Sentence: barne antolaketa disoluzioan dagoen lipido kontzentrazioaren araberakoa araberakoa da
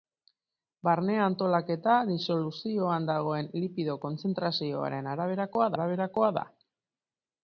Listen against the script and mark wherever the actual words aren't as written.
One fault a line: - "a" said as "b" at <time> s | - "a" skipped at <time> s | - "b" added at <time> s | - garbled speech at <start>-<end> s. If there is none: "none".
none